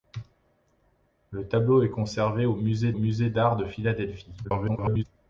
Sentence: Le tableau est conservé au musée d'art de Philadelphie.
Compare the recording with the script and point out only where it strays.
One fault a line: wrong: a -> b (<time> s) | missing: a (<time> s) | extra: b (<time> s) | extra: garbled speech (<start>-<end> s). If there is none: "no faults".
extra: musée (2.9 s)
extra: garbled speech (4.4-5.0 s)